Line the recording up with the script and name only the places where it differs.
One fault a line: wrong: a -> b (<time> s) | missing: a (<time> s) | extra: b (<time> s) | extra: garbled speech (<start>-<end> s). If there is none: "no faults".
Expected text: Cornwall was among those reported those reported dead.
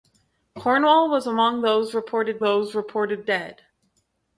no faults